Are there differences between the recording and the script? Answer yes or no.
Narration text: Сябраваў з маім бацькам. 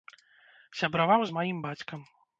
no